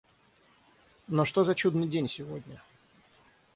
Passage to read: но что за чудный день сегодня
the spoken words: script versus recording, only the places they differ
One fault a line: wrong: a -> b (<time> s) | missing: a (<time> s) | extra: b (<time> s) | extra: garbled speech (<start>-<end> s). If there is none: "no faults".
no faults